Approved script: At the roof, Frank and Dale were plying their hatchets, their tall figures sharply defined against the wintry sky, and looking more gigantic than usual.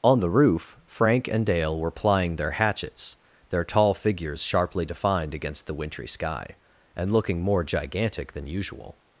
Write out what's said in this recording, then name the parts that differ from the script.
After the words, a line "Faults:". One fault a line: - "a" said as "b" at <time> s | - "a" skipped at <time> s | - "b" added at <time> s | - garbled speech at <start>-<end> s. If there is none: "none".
On the roof, Frank and Dale were plying their hatchets, their tall figures sharply defined against the wintry sky, and looking more gigantic than usual.
Faults:
- "At" said as "On" at 0.0 s